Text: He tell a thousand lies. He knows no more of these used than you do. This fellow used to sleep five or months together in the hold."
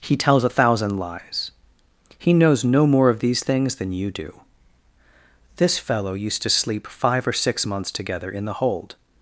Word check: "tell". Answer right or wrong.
wrong